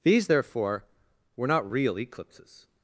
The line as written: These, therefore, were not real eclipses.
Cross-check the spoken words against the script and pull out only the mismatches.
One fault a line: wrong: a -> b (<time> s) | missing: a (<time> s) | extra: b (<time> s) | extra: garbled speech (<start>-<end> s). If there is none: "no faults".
no faults